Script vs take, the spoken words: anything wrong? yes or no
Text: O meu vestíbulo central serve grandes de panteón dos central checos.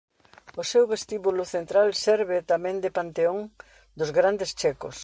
yes